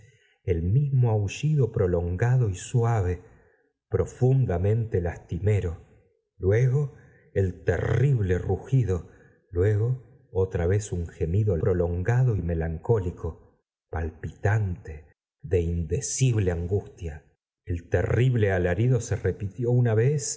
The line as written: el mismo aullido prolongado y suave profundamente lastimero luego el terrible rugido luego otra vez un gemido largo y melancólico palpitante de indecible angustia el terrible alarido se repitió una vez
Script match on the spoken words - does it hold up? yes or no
no